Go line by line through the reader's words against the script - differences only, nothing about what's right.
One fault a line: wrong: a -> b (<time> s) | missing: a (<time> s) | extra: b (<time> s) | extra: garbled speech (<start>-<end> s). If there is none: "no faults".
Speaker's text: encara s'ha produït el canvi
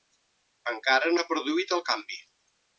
no faults